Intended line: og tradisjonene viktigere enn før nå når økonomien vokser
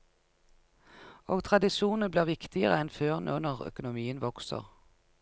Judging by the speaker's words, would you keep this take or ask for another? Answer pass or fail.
fail